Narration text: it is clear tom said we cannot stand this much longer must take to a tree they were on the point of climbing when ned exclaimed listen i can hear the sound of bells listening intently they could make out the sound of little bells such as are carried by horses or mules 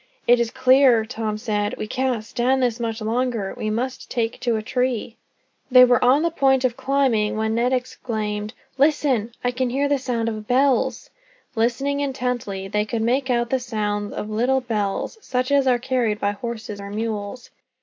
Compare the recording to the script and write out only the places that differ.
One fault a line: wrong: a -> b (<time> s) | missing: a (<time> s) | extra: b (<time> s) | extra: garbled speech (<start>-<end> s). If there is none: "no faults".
extra: we (3.6 s)